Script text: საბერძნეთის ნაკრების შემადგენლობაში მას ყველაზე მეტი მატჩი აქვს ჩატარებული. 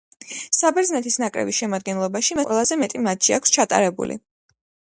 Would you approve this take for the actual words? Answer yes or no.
no